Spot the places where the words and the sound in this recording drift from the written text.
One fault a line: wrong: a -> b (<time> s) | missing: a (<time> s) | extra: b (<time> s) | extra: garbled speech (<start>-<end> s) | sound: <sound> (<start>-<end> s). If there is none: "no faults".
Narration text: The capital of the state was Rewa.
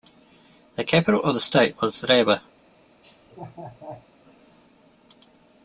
sound: laugh (3.0-4.1 s)